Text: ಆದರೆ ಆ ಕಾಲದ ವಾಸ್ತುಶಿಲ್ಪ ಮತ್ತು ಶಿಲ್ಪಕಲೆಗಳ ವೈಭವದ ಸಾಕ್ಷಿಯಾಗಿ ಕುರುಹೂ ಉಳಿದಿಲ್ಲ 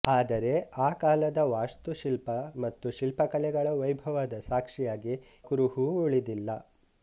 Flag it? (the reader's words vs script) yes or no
no